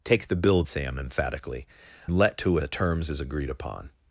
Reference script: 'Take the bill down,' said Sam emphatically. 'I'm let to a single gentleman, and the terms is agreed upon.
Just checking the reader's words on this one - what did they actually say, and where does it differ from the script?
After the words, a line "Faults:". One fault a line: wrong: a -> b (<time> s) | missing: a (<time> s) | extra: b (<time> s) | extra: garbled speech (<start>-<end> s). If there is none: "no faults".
'Take the bill Sam emphatically. 'Let to a the terms is agreed upon.
Faults:
missing: down said (0.6 s)
missing: I'm (1.7 s)
missing: single gentleman and (2.6 s)